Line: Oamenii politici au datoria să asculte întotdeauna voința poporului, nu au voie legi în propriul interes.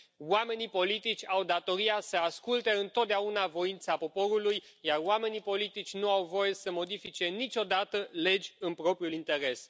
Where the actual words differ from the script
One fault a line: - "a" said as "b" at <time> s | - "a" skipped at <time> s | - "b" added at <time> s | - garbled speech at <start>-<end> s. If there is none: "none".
- "iar oamenii politici" added at 4.8 s
- "să modifice niciodată" added at 6.5 s